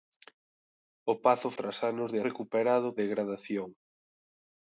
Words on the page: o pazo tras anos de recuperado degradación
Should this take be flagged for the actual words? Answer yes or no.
no